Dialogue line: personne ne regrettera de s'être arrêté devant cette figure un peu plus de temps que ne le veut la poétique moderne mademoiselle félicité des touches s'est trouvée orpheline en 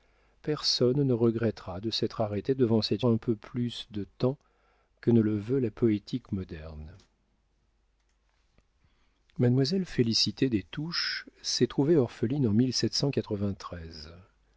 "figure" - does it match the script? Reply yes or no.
no